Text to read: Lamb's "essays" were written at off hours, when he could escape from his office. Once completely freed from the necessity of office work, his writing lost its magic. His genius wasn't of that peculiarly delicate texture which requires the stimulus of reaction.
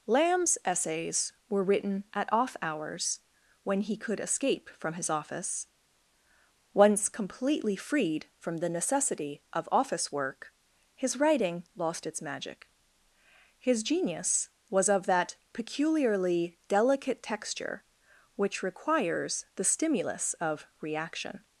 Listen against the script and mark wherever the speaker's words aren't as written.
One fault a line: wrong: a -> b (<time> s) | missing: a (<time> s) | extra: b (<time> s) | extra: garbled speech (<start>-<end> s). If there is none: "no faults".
wrong: wasn't -> was (14.7 s)